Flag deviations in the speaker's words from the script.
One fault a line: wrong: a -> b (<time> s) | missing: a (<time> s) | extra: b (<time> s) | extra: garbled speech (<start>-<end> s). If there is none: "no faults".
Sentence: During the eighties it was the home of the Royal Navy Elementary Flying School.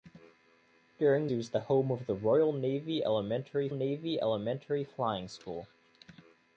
missing: the eighties (1.3 s)
extra: Navy Elementary (3.7 s)